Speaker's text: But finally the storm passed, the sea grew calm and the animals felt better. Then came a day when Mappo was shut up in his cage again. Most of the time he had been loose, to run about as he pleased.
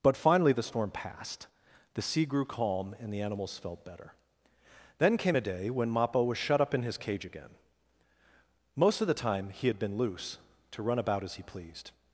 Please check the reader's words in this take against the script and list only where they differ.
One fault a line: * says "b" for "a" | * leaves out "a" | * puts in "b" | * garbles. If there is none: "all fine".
all fine